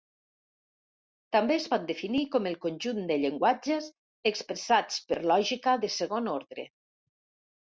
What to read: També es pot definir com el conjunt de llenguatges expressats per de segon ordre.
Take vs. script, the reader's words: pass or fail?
fail